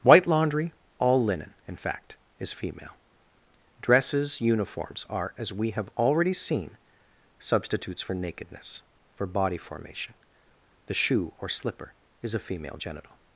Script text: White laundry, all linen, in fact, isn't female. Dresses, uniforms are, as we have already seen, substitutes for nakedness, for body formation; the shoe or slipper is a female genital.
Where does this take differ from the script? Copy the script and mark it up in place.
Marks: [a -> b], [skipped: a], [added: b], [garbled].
White laundry, all linen, in fact, [isn't -> is] female. Dresses, uniforms are, as we have already seen, substitutes for nakedness, for body formation; the shoe or slipper is a female genital.